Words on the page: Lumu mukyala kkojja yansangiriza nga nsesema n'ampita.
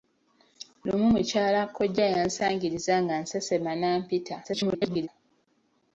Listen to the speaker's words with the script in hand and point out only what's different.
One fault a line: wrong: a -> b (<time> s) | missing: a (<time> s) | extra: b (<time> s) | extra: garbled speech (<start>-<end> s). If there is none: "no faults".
extra: garbled speech (4.4-5.1 s)